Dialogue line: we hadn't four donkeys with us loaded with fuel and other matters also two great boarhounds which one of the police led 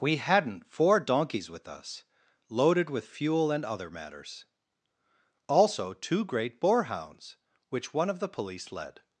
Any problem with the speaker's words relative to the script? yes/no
no